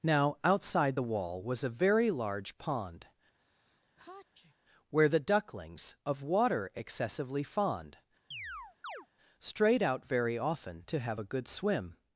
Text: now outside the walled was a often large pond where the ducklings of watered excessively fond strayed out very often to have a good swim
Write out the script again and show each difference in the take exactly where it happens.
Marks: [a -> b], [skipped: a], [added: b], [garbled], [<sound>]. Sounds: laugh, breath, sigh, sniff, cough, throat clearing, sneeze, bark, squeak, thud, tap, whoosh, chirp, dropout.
now outside the [walled -> wall] was a [often -> very] large pond [sneeze] where the ducklings of [watered -> water] excessively fond [chirp] strayed out very often to have a good swim